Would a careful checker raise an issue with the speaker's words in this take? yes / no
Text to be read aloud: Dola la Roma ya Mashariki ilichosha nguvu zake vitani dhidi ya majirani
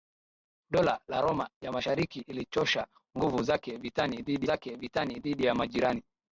yes